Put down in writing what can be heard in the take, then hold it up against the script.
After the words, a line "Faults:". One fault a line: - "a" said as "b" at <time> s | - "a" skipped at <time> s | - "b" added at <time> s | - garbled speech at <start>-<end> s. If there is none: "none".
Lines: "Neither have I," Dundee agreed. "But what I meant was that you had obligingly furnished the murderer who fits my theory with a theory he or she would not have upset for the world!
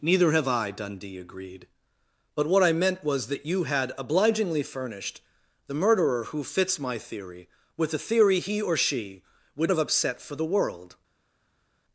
"Neither have I," Dundee agreed. "But what I meant was that you had obligingly furnished the murderer who fits my theory with a theory he or she would have upset for the world!
Faults:
- "not" skipped at 9.7 s